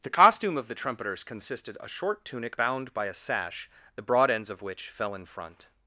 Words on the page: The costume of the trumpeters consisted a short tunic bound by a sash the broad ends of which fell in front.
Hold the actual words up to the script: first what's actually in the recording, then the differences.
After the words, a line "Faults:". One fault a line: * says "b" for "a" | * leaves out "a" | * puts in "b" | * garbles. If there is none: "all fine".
The costume of the trumpeters consisted a short tunic bound by a sash the broad ends of which fell in front.
Faults:
all fine